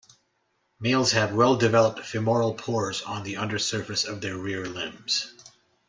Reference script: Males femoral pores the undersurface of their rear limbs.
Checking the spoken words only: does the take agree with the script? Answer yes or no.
no